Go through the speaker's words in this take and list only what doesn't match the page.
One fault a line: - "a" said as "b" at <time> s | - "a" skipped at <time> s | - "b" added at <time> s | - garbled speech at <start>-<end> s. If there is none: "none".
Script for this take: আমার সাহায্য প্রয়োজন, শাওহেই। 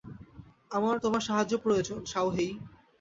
- "তোমার" added at 1.0 s